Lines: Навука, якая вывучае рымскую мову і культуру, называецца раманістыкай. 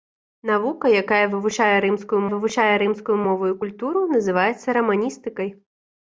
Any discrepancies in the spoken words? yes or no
yes